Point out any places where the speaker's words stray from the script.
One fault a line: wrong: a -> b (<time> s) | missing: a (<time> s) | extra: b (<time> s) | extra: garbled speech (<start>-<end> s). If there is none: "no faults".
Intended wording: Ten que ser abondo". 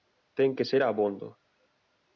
no faults